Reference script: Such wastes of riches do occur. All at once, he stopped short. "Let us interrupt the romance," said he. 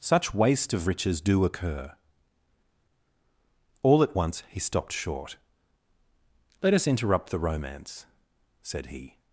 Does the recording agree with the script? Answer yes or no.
no